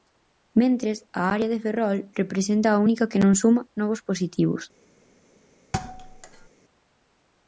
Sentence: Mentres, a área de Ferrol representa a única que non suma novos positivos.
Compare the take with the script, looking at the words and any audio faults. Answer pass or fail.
fail